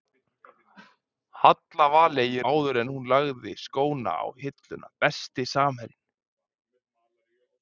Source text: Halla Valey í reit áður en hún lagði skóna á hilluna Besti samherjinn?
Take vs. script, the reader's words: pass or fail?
fail